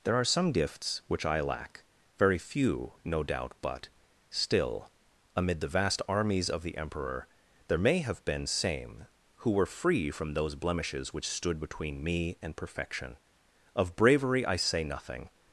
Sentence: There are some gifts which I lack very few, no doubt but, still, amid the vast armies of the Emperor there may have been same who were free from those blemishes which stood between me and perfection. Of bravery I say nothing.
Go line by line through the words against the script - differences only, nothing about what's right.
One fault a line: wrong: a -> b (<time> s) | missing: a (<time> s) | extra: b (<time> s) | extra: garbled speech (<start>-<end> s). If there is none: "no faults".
no faults